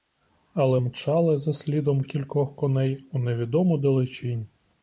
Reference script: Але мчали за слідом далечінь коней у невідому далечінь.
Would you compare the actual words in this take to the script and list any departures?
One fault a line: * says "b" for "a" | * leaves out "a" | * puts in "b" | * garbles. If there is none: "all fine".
* says "кількох" for "далечінь"